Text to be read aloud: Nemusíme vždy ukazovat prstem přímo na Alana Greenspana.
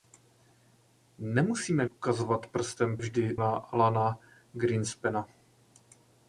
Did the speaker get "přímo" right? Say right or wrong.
wrong